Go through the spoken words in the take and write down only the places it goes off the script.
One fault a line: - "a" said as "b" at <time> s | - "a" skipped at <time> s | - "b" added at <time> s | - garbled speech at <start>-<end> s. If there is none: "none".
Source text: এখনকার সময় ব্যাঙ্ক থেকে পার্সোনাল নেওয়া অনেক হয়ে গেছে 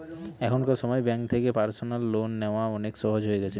- "লোন" added at 2.1 s
- "সহজ" added at 3.0 s